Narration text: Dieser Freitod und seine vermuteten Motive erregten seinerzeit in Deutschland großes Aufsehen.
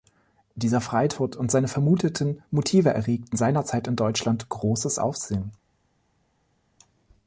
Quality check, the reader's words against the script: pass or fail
pass